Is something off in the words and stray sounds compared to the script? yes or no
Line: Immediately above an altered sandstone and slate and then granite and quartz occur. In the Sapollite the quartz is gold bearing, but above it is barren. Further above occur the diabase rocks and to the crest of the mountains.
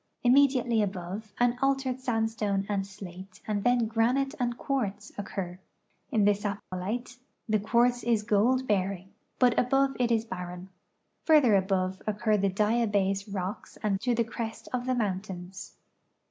yes